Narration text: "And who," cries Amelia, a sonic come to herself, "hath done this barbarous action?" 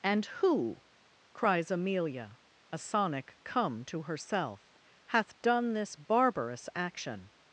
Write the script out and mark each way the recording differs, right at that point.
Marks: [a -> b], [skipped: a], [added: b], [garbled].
"And who," cries Amelia, a sonic come to herself, "hath done this barbarous action?"